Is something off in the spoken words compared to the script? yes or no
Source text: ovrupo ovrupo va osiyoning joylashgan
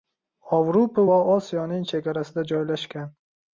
yes